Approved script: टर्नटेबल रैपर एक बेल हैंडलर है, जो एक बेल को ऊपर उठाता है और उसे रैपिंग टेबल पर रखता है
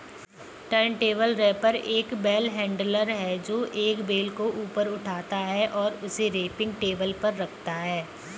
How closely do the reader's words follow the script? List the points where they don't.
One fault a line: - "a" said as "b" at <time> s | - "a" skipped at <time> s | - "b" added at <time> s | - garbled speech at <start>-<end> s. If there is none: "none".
none